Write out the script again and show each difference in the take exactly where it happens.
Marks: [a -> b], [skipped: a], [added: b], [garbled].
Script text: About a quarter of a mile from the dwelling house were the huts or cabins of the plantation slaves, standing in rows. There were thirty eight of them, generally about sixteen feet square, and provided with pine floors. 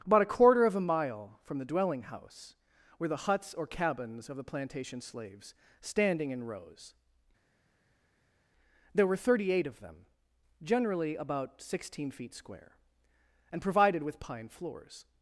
About a quarter of a mile from the dwelling house were the huts or cabins of the plantation slaves, standing in rows. There were thirty eight of them, generally about sixteen feet square, and provided with pine floors.